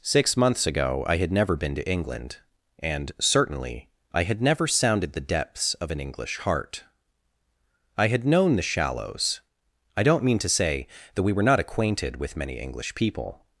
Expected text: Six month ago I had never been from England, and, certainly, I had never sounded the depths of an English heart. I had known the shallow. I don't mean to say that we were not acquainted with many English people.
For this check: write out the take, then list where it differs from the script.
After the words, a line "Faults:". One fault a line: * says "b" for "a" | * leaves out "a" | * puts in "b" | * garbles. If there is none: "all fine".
Six months ago I had never been to England, and, certainly, I had never sounded the depths of an English heart. I had known the shallows. I don't mean to say that we were not acquainted with many English people.
Faults:
* says "months" for "month"
* says "to" for "from"
* says "shallows" for "shallow"